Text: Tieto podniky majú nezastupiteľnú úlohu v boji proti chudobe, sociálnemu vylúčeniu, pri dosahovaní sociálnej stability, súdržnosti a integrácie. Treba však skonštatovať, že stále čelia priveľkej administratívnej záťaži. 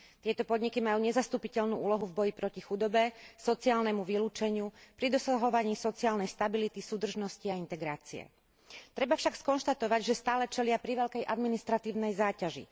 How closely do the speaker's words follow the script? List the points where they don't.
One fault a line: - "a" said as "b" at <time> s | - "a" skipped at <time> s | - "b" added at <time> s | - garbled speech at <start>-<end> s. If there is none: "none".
none